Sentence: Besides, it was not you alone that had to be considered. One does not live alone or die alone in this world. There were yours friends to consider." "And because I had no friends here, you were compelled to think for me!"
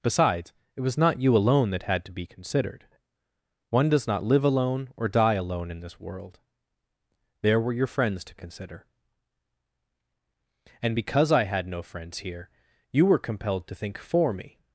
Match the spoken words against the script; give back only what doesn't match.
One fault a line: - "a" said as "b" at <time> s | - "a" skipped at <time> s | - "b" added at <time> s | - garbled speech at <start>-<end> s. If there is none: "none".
- "yours" said as "your" at 7.7 s